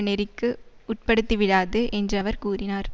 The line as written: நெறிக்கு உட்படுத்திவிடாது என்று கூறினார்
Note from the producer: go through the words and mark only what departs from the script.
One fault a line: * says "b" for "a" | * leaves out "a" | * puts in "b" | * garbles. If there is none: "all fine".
* puts in "அவர்"